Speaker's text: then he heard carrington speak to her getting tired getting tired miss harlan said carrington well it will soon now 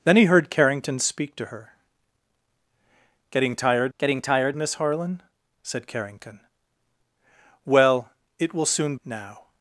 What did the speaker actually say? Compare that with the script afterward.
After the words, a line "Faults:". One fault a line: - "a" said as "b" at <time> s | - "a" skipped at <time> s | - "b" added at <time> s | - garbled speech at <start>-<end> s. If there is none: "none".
then he heard carrington speak to her getting tired getting tired miss harlan said carrington well it will soon now
Faults:
none